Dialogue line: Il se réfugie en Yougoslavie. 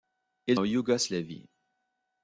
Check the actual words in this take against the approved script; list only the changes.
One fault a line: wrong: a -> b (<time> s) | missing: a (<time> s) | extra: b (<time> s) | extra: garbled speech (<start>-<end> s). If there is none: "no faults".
missing: se réfugie (0.6 s)